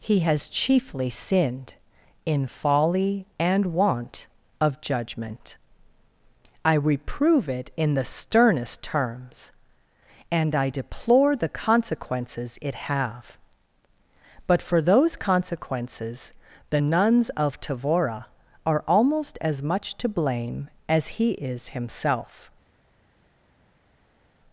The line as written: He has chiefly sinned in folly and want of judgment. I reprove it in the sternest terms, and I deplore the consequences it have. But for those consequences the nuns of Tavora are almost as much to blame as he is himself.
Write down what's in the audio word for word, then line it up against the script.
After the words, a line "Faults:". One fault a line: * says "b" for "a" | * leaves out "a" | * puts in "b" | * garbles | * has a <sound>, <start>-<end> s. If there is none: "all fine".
He has chiefly sinned in folly and want of judgment. I reprove it in the sternest terms, and I deplore the consequences it have. But for those consequences the nuns of Tavora are almost as much to blame as he is himself.
Faults:
all fine